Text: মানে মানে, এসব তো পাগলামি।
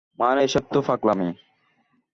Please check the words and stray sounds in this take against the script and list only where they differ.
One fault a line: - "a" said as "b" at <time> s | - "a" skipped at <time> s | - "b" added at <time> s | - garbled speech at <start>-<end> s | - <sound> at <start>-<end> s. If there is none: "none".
- "মানে" skipped at 0.4 s